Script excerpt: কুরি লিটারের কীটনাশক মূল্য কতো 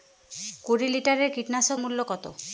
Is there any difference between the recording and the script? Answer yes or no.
no